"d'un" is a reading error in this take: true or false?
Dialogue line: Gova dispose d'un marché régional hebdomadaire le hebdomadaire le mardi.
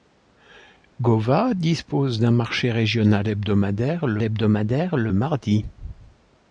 false